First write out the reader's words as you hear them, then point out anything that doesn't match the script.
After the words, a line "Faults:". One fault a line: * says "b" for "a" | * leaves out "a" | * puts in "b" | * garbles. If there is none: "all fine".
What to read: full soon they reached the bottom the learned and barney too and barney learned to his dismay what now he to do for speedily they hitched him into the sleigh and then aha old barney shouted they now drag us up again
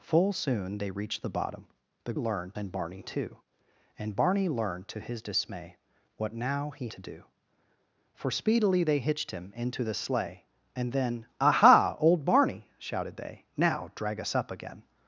full soon they reached the bottom the learned and barney too and barney learned to his dismay what now he to do for speedily they hitched him into the sleigh and then aha old barney shouted they now drag us up again
Faults:
all fine